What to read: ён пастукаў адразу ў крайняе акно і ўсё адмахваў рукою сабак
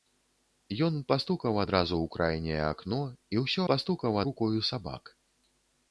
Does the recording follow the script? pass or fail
fail